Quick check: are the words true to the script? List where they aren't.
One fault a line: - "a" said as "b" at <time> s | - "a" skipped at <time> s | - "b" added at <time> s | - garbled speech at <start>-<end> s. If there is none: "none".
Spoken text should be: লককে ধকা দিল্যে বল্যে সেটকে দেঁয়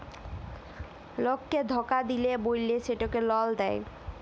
- "লল" added at 3.3 s